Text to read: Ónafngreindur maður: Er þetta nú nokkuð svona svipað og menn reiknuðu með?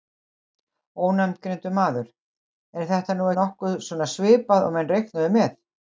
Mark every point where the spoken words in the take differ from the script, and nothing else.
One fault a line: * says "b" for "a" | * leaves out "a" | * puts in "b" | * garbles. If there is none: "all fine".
all fine